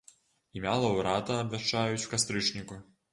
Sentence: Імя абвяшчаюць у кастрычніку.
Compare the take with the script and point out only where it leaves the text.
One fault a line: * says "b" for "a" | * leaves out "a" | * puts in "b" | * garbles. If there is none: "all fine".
* puts in "лаўрэата"